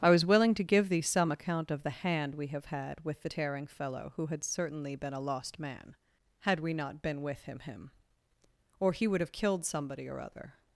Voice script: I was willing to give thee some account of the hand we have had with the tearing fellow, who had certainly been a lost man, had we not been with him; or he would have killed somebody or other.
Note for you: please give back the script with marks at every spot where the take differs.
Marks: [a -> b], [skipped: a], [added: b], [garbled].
I was willing to give thee some account of the hand we have had with the tearing fellow, who had certainly been a lost man, had we not been with him; [added: him] or he would have killed somebody or other.